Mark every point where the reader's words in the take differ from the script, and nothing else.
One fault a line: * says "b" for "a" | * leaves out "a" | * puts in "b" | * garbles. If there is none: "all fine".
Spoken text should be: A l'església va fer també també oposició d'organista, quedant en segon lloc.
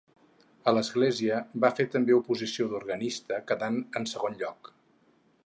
* leaves out "també"